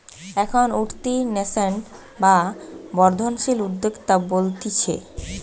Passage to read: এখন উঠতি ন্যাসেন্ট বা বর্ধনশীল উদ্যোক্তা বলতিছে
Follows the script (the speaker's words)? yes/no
yes